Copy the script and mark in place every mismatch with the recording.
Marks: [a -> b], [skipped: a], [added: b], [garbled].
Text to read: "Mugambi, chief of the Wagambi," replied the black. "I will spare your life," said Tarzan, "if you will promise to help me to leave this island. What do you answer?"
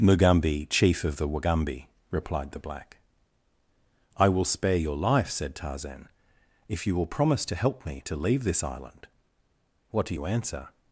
"Mugambi, chief of the Wagambi," replied the black. "I will spare your life," said Tarzan, "if you will promise to help me to leave this island. What do you answer?"